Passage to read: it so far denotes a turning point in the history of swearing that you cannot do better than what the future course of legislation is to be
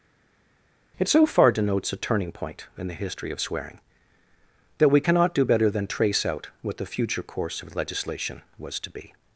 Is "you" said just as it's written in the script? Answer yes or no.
no